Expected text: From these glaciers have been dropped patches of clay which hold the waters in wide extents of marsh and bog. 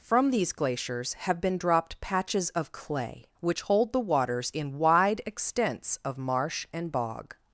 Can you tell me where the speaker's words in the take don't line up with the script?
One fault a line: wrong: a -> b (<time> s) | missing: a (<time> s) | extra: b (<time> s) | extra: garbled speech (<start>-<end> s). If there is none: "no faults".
no faults